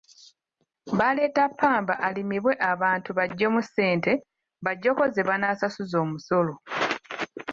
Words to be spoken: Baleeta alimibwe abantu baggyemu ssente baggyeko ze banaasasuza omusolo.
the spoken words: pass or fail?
fail